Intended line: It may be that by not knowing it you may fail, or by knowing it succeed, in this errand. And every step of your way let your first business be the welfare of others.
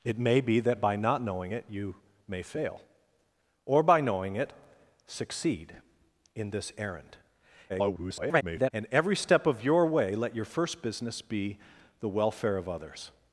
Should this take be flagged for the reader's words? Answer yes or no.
yes